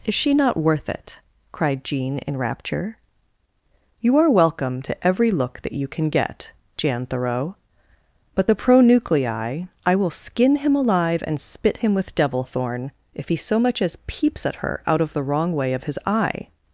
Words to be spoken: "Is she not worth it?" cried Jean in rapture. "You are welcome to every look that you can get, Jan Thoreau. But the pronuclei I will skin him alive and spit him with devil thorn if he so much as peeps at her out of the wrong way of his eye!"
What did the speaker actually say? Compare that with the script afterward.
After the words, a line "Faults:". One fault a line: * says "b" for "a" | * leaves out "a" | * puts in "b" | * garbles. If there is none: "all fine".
"Is she not worth it?" cried Jean in rapture. "You are welcome to every look that you can get, Jan Thoreau. But the pronuclei I will skin him alive and spit him with devil thorn if he so much as peeps at her out of the wrong way of his eye!"
Faults:
all fine